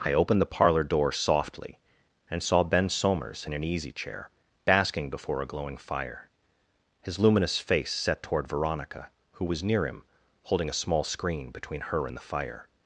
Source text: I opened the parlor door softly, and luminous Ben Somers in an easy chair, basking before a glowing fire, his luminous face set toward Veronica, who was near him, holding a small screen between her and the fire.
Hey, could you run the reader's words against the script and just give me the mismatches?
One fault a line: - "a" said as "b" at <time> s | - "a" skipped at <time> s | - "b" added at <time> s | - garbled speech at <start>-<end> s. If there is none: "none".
- "luminous" said as "saw" at 2.4 s